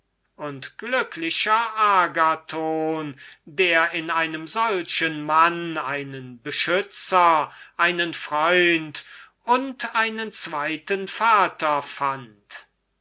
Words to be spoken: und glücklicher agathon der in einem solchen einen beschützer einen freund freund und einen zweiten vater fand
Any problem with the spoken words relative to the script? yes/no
yes